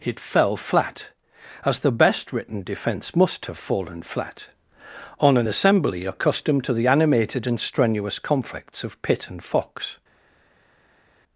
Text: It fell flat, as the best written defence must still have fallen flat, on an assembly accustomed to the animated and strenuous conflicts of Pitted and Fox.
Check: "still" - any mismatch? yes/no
yes